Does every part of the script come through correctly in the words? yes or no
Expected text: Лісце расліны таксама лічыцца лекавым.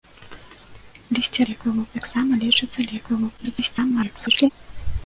no